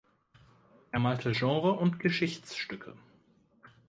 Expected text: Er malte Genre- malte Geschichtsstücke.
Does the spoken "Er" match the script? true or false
true